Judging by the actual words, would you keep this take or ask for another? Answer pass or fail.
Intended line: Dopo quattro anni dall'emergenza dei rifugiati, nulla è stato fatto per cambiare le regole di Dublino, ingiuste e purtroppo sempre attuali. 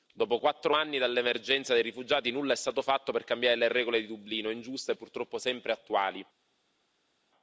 pass